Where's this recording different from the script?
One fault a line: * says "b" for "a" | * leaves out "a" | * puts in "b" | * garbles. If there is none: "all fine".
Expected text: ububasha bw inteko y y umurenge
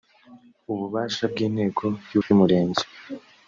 all fine